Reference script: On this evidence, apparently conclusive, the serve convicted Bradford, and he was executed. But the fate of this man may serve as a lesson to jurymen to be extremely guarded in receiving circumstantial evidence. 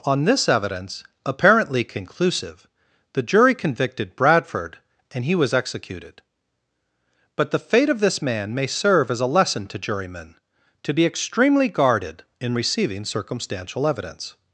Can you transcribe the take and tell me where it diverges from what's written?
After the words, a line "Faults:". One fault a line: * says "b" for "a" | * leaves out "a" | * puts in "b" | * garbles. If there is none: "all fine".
On this evidence, apparently conclusive, the jury convicted Bradford, and he was executed. But the fate of this man may serve as a lesson to jurymen to be extremely guarded in receiving circumstantial evidence.
Faults:
* says "jury" for "serve"